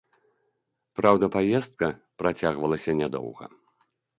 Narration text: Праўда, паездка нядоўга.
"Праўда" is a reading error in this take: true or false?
false